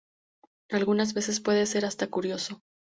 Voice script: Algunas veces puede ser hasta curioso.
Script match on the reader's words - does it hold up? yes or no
yes